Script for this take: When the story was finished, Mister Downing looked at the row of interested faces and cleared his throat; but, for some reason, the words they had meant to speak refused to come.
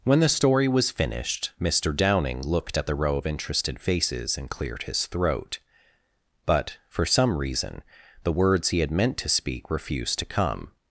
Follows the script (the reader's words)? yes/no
no